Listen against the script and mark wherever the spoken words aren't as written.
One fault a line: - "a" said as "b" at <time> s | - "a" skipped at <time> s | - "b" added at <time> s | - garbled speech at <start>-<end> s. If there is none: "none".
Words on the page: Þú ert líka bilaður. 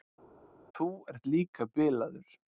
none